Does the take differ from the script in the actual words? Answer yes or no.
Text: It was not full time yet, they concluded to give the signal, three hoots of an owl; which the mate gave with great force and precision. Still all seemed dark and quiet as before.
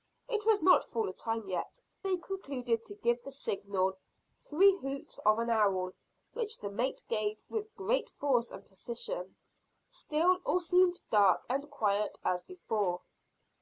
no